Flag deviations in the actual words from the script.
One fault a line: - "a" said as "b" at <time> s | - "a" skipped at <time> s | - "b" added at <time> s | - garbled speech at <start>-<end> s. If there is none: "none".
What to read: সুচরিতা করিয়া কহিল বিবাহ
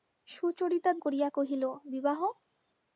none